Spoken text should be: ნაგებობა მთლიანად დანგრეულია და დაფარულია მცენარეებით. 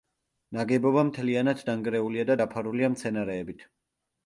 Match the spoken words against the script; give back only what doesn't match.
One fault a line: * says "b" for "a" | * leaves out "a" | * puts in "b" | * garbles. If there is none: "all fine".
all fine